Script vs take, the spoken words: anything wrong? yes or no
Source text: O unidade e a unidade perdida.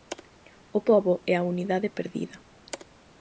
yes